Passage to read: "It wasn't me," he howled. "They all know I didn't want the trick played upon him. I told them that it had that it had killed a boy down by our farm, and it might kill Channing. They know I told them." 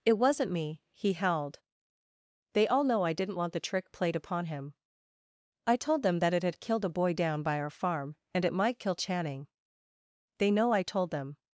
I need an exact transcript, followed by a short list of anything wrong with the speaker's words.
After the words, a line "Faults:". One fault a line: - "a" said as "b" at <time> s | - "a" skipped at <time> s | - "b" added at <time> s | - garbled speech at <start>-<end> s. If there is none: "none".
"It wasn't me," he howled. "They all know I didn't want the trick played upon him. I told them that it had killed a boy down by our farm, and it might kill Channing. They know I told them."
Faults:
- "that it had" skipped at 6.6 s